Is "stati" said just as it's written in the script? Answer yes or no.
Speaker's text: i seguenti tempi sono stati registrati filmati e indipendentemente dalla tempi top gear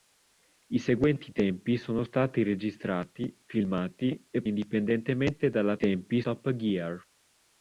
yes